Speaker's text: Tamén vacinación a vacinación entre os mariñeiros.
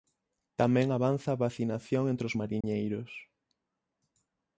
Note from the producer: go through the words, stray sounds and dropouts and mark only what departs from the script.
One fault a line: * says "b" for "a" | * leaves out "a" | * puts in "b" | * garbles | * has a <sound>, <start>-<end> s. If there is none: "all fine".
* says "avanza" for "vacinación"
* has a dropout, 2.6-2.6 s